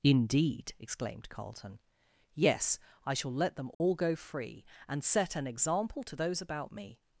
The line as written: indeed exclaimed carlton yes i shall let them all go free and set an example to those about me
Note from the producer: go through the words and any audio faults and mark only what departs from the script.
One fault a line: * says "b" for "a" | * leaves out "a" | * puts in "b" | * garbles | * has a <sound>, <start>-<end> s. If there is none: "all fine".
* has a dropout, 3.7-3.8 s